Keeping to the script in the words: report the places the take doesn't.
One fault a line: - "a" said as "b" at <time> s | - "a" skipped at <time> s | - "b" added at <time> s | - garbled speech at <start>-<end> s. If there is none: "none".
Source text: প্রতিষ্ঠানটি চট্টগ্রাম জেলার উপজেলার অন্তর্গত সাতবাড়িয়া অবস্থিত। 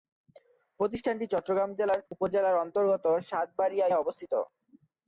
none